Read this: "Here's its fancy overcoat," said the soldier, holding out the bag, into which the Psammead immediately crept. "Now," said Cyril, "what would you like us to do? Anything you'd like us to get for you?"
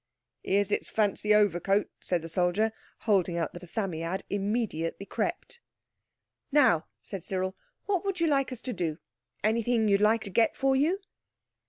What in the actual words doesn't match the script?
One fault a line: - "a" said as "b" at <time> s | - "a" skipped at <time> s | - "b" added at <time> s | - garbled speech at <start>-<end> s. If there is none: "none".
- "bag into which" skipped at 3.6 s
- "us" skipped at 10.2 s